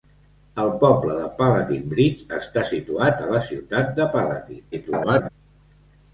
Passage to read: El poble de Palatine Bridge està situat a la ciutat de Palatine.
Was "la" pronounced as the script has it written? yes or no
yes